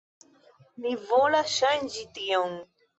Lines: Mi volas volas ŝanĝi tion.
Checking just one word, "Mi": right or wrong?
right